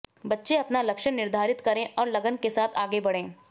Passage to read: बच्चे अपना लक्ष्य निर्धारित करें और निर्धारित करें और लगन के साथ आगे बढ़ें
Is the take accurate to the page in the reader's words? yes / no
no